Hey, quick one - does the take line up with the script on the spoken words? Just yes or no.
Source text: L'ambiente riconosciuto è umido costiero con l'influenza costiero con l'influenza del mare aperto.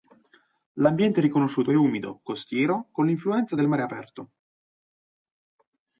no